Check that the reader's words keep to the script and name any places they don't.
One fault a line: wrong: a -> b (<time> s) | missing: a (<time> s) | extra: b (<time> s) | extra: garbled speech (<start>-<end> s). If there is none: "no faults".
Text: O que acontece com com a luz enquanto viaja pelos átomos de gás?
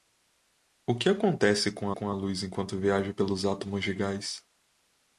no faults